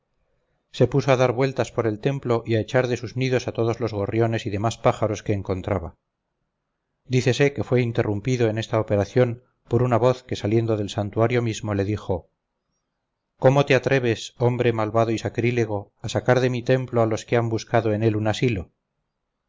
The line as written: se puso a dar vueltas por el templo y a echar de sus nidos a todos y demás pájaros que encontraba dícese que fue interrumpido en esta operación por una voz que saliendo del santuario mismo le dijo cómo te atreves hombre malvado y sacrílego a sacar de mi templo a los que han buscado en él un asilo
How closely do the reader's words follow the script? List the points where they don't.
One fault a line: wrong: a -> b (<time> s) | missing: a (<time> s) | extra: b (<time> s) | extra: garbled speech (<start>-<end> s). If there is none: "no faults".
extra: los gorriones (3.8 s)